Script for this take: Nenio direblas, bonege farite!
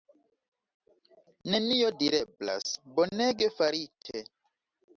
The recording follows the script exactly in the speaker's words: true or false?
true